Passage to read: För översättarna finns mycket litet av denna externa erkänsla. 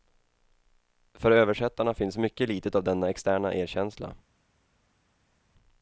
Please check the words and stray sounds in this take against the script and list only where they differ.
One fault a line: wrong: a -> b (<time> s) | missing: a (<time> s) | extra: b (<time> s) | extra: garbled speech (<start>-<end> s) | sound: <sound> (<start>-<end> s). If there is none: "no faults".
no faults